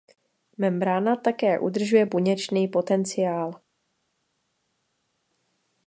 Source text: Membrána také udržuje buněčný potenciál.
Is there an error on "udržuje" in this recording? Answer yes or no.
no